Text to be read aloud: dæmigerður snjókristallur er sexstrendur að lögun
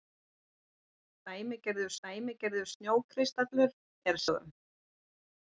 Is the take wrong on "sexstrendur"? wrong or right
wrong